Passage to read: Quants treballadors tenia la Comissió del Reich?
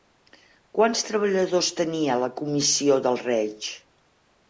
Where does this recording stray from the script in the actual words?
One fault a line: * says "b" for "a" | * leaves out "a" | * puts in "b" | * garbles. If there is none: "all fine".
all fine